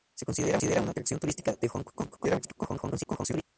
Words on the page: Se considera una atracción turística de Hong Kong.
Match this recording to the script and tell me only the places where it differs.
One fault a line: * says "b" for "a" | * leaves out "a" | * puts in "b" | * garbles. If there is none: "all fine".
* garbles